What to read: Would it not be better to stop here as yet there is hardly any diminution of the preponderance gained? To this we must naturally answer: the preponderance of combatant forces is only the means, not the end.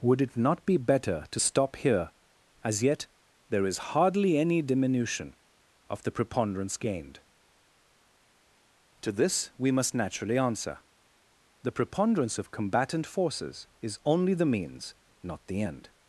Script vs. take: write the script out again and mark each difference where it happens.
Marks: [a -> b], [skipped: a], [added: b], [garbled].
Would it not be better to stop here as yet there is hardly any diminution of the preponderance gained? To this we must naturally answer: the preponderance of combatant forces is only the means, not the end.